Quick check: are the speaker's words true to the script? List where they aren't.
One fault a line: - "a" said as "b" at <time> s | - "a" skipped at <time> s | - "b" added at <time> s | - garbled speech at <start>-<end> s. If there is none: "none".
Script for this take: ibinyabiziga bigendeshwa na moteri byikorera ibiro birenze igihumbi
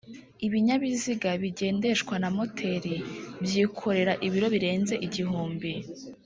none